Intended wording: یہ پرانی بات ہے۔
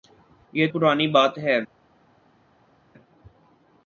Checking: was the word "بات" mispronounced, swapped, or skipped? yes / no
no